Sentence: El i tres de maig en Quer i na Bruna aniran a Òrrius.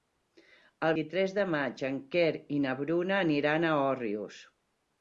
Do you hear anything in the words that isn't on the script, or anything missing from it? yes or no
no